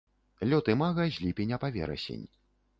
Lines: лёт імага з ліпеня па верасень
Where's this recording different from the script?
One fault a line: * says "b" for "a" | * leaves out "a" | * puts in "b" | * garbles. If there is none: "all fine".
all fine